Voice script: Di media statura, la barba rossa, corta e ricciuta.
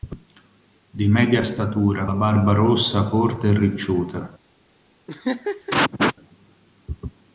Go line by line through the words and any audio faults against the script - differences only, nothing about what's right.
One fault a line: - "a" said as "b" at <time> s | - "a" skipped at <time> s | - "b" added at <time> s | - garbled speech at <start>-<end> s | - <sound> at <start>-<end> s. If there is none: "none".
- laugh at 5.1-6.1 s